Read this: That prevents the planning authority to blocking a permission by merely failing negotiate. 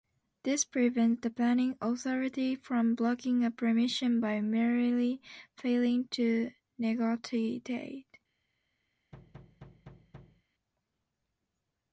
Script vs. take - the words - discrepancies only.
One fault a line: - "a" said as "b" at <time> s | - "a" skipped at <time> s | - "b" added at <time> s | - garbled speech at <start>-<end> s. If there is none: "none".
- "That" said as "This" at 0.4 s
- "to" said as "from" at 2.5 s
- "to" added at 6.1 s